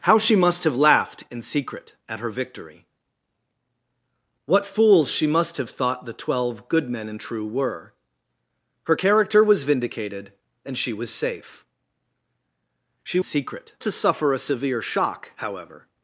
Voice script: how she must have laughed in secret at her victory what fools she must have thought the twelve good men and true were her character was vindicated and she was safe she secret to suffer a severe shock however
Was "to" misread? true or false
false